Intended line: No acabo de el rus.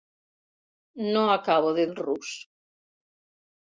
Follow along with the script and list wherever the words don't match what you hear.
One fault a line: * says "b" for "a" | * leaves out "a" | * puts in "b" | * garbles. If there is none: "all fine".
all fine